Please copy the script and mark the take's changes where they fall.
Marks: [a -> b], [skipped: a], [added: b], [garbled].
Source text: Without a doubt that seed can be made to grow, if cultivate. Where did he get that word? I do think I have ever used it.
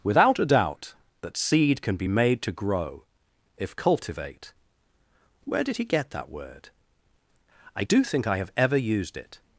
Without a doubt that seed can be made to grow, if cultivate. Where did he get that word? I do think I have ever used it.